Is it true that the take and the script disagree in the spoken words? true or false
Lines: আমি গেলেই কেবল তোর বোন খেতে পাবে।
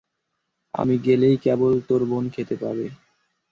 false